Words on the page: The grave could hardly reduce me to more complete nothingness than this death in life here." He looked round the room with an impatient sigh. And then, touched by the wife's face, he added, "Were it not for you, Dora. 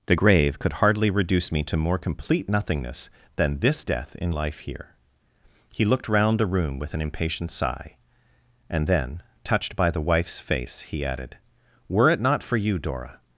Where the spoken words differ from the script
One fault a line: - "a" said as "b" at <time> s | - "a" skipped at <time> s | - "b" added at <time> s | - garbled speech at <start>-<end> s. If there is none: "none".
none